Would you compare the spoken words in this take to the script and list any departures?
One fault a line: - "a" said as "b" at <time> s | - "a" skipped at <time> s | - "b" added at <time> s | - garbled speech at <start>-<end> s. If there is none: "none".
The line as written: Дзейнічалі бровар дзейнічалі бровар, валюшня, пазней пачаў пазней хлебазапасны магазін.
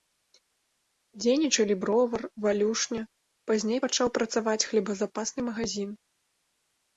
- "дзейнічалі бровар" skipped at 2.2 s
- "пазней" said as "працаваць" at 4.2 s